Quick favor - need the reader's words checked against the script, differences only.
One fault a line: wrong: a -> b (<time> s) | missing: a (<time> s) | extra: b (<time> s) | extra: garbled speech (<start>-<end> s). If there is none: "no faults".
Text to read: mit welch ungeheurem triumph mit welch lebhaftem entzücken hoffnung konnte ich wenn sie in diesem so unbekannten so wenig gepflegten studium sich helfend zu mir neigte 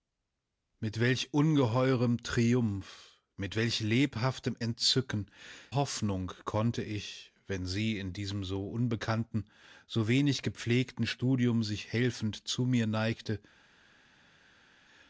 no faults